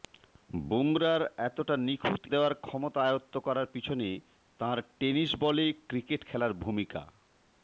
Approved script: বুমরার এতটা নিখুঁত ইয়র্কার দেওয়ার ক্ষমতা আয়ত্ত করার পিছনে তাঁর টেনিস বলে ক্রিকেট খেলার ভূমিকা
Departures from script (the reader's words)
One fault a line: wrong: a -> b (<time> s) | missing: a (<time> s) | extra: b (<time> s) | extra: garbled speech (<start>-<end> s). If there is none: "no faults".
missing: ইয়র্কার (2.2 s)